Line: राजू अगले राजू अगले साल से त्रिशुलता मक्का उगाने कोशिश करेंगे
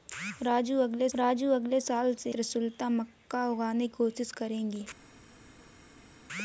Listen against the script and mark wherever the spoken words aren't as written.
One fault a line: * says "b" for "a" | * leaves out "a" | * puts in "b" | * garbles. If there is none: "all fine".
all fine